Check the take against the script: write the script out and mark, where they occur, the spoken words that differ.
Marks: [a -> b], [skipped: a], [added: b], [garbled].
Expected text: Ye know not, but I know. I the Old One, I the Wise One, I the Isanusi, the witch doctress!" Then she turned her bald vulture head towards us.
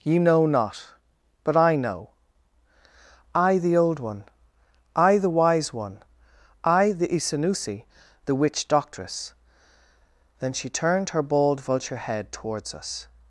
Ye know not, but I know. I the Old One, I the Wise One, I the Isanusi, the witch doctress!" Then she turned her bald vulture head towards us.